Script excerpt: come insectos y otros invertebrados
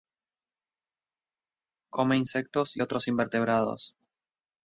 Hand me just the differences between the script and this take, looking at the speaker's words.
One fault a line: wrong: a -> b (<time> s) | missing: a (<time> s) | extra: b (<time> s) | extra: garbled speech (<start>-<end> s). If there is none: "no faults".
no faults